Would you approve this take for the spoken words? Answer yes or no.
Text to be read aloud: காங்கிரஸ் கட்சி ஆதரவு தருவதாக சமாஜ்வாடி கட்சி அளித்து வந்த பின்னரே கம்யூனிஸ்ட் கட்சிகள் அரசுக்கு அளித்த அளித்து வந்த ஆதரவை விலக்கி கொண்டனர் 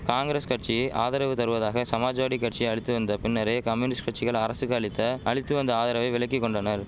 yes